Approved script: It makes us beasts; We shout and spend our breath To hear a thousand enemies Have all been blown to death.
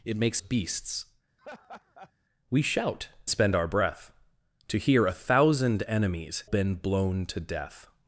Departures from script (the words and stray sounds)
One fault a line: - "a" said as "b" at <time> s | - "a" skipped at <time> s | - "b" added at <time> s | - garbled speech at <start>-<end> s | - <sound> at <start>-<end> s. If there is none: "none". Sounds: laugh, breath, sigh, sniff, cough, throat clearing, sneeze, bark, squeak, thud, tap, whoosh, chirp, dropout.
- "us" skipped at 0.4 s
- laugh at 1.4-2.1 s
- "and" skipped at 3.1 s
- "Have all" skipped at 6.4 s